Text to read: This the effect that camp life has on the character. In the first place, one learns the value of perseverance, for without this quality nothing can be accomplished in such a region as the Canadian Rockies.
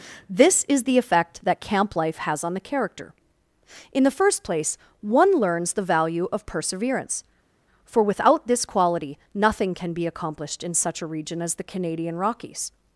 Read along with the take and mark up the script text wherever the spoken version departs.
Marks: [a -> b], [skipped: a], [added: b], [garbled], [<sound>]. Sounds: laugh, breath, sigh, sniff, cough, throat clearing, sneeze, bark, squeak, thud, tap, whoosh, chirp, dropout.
This [added: is] the effect that camp life has on the character. In the first place, one learns the value of perseverance, for without this quality nothing can be accomplished in such a region as the Canadian Rockies.